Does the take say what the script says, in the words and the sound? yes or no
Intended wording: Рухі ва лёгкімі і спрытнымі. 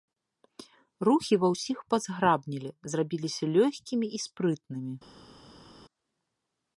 no